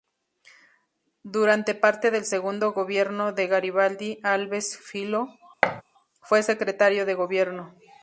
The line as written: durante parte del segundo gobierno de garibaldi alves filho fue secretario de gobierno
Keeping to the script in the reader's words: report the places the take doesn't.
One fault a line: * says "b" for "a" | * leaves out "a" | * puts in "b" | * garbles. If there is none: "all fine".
all fine